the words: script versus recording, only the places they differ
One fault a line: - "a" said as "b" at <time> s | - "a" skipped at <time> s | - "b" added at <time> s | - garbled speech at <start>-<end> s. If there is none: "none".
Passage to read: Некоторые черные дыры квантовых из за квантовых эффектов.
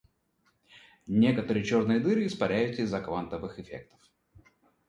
- "квантовых" said as "испаряются" at 2.2 s